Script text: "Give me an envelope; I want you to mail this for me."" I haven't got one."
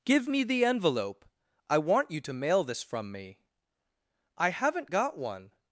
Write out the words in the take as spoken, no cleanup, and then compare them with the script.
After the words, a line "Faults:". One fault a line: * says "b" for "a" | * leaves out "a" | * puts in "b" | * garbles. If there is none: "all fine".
"Give me the envelope; I want you to mail this from me."" I haven't got one."
Faults:
* says "the" for "an"
* says "from" for "for"